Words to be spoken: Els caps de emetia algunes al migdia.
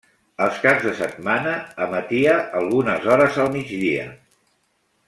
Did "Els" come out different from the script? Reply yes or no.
no